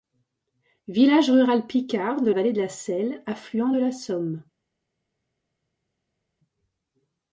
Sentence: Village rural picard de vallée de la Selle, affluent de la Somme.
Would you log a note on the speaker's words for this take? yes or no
no